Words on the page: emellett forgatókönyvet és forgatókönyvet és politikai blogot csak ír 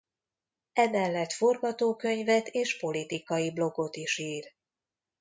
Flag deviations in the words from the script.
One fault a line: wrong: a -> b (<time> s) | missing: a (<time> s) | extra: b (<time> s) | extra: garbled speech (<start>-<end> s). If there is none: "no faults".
missing: forgatókönyvet és (2.8 s)
wrong: csak -> is (4.0 s)